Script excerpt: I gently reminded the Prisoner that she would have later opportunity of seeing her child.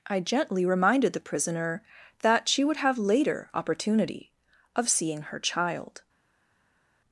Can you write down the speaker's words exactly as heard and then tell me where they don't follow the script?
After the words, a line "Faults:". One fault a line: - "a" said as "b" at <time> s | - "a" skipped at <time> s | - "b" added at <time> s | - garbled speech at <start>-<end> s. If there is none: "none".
I gently reminded the Prisoner that she would have later opportunity of seeing her child.
Faults:
none